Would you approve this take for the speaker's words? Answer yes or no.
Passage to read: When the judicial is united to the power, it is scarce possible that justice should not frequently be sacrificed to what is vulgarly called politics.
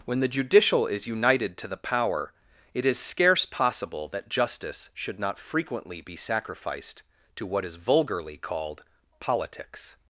yes